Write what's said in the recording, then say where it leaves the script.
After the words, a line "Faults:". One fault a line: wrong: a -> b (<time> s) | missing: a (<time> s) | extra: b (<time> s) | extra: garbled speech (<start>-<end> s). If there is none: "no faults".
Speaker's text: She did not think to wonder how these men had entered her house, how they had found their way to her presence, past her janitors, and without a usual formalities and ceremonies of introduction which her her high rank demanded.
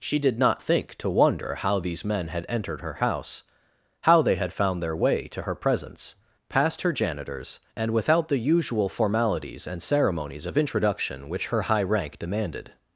She did not think to wonder how these men had entered her house, how they had found their way to her presence, past her janitors, and without the usual formalities and ceremonies of introduction which her high rank demanded.
Faults:
wrong: a -> the (8.3 s)
missing: her (11.6 s)